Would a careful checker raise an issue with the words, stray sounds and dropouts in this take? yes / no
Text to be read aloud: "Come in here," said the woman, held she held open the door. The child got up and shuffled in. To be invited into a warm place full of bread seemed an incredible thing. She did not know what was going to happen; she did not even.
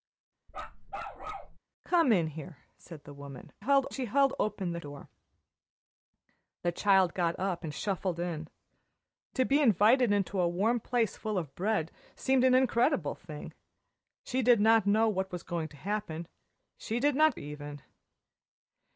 yes